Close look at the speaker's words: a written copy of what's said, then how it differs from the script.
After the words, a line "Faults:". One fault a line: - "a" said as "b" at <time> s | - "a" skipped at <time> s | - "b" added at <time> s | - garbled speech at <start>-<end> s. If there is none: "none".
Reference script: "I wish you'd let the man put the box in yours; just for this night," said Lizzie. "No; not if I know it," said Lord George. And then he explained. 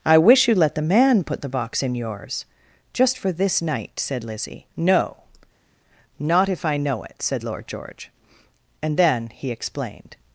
"I wish you'd let the man put the box in yours; just for this night," said Lizzie. "No; not if I know it," said Lord George. And then he explained.
Faults:
none